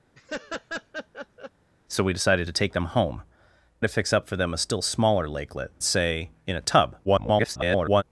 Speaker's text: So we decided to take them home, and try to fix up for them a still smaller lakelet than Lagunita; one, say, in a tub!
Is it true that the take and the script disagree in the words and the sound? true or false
true